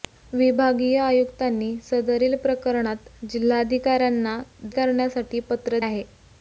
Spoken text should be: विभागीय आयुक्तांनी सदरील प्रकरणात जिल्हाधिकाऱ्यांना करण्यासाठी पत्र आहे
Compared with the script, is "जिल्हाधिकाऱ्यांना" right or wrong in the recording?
right